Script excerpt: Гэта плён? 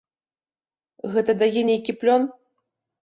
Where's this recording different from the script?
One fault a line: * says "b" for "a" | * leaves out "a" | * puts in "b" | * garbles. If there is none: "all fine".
* puts in "дае нейкі"